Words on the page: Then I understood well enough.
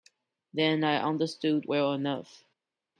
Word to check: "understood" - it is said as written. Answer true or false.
true